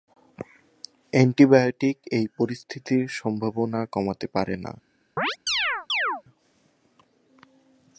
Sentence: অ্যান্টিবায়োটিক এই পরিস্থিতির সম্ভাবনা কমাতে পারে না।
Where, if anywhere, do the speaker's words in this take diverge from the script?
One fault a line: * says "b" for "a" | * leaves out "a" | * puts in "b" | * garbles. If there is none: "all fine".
all fine